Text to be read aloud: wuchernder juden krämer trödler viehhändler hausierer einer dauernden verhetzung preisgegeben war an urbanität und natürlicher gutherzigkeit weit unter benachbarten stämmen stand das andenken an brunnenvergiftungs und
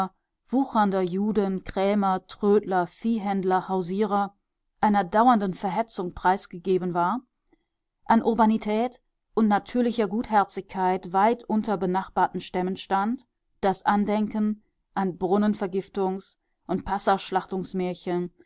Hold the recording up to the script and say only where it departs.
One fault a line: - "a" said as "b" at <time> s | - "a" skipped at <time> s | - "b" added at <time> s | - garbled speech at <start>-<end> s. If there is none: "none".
none